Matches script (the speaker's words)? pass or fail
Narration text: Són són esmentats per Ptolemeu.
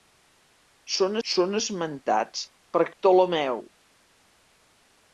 pass